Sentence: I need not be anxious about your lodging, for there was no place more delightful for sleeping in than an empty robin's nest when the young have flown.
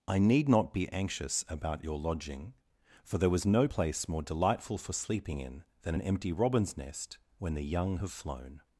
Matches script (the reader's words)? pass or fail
pass